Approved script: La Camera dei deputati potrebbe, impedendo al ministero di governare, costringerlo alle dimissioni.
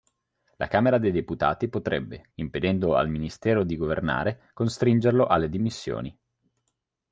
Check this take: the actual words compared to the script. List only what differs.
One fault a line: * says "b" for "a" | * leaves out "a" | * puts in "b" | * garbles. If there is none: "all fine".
all fine